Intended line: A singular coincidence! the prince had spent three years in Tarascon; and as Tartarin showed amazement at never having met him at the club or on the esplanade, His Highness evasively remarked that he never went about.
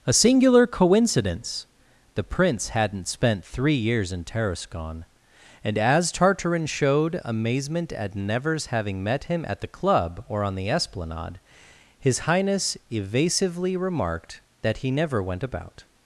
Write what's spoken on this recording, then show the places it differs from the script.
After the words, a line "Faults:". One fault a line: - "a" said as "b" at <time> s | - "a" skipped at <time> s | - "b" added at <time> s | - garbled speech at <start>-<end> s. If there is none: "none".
A singular coincidence! the prince hadn't spent three years in Tarascon; and as Tartarin showed amazement at nevers having met him at the club or on the esplanade, His Highness evasively remarked that he never went about.
Faults:
- "had" said as "hadn't" at 2.7 s
- "never" said as "nevers" at 8.2 s